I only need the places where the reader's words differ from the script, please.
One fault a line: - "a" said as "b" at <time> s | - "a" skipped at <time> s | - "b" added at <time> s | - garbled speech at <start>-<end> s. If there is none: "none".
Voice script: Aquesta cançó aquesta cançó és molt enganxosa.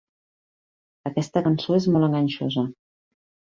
- "aquesta cançó" skipped at 1.8 s